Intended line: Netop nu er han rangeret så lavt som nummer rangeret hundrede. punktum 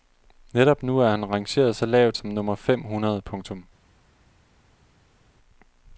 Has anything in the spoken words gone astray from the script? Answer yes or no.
yes